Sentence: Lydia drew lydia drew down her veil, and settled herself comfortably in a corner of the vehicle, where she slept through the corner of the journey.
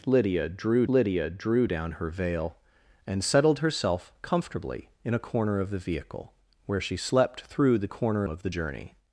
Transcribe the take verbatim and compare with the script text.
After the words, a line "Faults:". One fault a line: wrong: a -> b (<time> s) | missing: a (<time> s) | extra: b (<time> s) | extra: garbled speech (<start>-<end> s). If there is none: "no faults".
Lydia drew lydia drew down her veil, and settled herself comfortably in a corner of the vehicle, where she slept through the corner of the journey.
Faults:
no faults